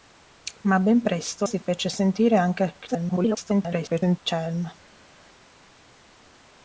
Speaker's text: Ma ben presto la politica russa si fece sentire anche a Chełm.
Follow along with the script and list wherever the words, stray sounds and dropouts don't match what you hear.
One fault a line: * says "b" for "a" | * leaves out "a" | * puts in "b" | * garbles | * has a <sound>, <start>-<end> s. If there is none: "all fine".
* leaves out "la politica russa"
* garbles